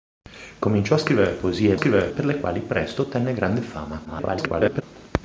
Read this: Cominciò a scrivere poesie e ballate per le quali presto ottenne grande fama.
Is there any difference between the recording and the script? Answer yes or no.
yes